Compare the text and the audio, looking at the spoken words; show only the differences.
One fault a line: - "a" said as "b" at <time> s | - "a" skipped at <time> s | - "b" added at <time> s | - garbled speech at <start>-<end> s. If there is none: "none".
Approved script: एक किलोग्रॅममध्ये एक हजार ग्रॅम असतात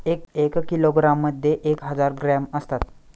none